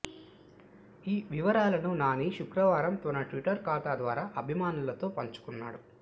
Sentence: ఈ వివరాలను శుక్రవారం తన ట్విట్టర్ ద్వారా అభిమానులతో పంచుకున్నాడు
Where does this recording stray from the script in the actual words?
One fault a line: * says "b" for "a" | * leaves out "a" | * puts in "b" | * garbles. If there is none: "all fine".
* puts in "నాని"
* puts in "ఖాతా"